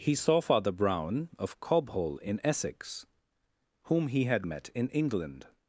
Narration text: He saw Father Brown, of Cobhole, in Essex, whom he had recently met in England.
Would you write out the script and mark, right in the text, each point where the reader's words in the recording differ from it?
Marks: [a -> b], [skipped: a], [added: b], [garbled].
He saw Father Brown, of Cobhole, in Essex, whom he had [skipped: recently] met in England.